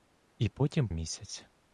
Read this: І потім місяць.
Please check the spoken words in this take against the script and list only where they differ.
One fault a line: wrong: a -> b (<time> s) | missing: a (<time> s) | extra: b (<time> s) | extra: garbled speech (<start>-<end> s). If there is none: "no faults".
no faults